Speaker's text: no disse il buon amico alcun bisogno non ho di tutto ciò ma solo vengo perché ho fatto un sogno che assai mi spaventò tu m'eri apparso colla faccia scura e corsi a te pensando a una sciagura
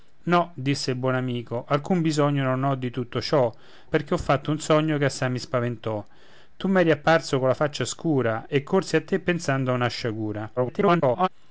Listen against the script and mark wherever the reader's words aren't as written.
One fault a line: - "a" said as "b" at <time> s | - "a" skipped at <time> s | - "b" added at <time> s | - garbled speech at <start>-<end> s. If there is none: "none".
- "ma solo vengo" skipped at 3.5 s
- garbled speech at 10.6-11.3 s